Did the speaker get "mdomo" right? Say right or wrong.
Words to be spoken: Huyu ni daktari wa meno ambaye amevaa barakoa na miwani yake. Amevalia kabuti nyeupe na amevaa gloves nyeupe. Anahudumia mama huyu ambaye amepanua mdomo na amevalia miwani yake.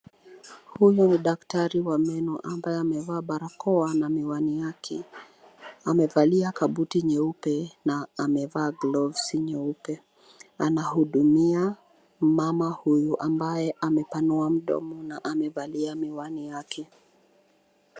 right